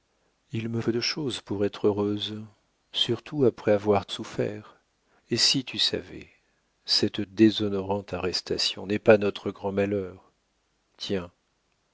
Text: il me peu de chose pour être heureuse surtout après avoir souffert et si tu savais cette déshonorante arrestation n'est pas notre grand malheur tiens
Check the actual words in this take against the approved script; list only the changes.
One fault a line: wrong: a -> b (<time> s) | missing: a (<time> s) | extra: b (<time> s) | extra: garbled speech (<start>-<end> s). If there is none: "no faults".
no faults